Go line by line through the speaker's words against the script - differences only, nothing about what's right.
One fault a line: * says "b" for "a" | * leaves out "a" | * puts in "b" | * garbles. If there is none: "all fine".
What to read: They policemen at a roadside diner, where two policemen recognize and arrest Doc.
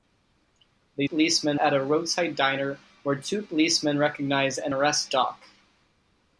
all fine